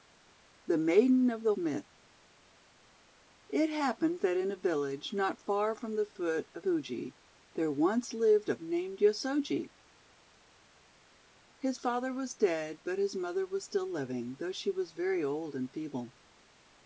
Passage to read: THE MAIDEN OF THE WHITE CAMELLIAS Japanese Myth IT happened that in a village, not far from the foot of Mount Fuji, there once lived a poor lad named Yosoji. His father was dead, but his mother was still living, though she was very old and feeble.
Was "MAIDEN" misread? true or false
false